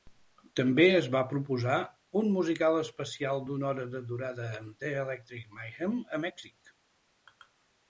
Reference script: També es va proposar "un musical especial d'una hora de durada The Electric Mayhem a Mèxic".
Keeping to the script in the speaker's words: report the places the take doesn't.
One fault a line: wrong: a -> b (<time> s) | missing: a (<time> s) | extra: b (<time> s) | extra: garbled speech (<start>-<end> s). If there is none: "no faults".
extra: amb (4.6 s)